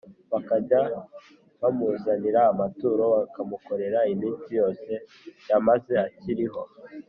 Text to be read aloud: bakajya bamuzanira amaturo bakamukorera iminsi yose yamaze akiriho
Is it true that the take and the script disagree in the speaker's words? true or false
false